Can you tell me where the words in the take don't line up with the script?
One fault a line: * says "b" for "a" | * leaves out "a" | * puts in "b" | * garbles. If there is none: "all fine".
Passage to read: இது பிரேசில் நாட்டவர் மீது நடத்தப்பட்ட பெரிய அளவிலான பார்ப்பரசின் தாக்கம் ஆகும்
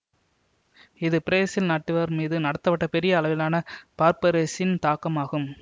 all fine